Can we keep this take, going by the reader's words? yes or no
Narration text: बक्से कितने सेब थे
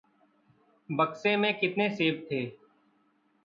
no